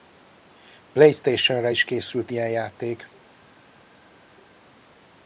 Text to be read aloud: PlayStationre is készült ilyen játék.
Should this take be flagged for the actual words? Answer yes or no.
no